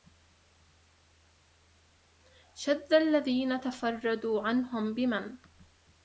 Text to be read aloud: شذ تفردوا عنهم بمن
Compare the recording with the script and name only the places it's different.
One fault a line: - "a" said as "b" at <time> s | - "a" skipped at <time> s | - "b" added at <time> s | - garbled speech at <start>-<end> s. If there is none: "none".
- "الذين" added at 2.9 s